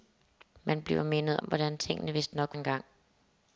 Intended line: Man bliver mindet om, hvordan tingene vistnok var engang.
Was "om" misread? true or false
true